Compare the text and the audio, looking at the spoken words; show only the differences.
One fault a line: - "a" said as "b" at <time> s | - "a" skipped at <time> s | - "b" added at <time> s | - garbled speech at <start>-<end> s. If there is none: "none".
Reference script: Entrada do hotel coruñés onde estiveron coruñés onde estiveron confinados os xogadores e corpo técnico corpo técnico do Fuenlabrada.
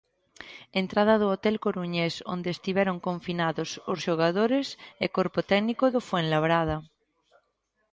- "coruñés onde estiveron" skipped at 3.0 s
- "corpo técnico" skipped at 5.8 s